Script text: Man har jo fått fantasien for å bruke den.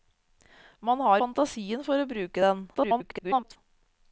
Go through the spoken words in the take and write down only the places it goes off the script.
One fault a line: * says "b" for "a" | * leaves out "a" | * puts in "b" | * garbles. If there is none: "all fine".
* leaves out "jo fått"
* garbles